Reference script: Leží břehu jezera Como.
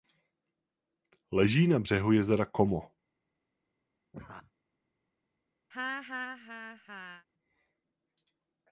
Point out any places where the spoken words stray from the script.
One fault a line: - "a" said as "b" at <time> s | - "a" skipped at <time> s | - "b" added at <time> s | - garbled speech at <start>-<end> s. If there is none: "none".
- "na" added at 1.7 s